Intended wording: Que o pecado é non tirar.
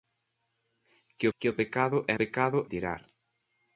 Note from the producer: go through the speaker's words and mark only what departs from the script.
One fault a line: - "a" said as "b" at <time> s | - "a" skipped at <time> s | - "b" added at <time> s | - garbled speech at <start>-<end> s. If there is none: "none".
- "que" added at 1.4 s
- "non" said as "pecado" at 2.2 s